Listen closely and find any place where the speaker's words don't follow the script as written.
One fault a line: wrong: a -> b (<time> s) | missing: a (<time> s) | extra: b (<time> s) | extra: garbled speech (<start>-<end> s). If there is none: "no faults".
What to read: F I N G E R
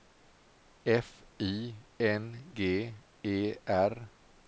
no faults